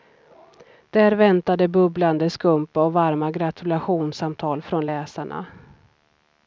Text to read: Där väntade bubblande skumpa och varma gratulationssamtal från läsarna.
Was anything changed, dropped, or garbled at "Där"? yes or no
no